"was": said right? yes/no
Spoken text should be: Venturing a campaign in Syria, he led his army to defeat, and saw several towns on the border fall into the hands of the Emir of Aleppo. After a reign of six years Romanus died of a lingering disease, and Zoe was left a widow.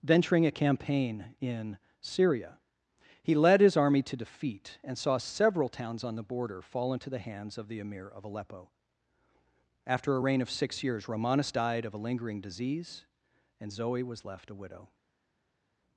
yes